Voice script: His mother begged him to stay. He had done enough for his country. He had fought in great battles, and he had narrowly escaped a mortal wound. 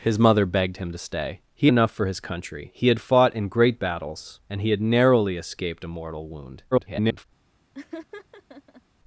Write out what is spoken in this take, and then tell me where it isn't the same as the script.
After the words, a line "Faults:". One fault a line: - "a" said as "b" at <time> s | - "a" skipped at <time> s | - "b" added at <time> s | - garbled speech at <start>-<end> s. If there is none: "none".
His mother begged him to stay. He enough for his country. He had fought in great battles, and he had narrowly escaped a mortal wound. [garbled]
Faults:
- "had done" skipped at 1.7 s
- garbled speech at 6.7-7.3 s